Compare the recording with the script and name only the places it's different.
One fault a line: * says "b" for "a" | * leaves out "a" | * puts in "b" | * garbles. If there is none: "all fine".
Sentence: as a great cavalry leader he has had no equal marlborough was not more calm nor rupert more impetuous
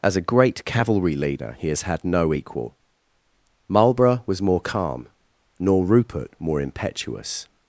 * leaves out "not"